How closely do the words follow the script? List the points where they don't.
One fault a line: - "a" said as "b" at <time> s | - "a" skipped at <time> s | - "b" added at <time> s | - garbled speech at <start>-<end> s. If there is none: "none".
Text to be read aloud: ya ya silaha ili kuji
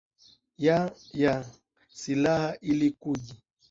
none